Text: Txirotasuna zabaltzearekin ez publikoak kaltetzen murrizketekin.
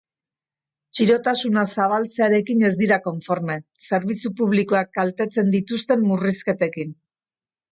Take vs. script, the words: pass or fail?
fail